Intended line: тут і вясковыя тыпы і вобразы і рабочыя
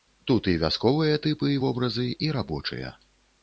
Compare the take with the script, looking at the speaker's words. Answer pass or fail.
pass